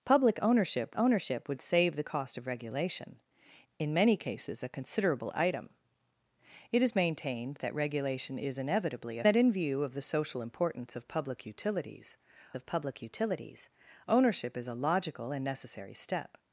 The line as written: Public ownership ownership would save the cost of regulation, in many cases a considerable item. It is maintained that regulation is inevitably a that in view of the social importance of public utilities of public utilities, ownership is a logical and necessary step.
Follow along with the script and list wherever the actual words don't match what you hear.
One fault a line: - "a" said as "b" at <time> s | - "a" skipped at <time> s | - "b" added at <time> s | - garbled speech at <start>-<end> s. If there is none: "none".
none